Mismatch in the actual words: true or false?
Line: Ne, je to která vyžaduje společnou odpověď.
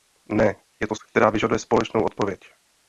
false